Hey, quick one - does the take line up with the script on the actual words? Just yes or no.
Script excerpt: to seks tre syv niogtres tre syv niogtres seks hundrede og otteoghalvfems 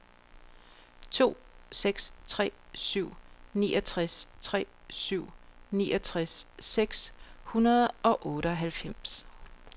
yes